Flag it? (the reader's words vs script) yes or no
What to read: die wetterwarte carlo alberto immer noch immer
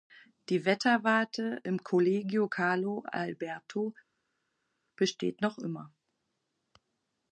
yes